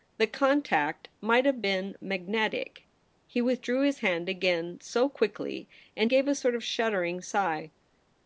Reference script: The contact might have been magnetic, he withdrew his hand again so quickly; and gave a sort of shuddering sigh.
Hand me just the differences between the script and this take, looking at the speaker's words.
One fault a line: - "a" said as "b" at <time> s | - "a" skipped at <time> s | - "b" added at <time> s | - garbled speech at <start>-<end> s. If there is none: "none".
none